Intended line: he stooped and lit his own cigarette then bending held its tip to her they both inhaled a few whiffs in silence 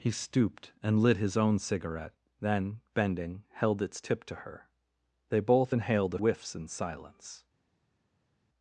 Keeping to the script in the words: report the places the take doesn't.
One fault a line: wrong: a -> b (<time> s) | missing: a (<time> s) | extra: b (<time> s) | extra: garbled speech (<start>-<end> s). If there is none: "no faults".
missing: few (6.2 s)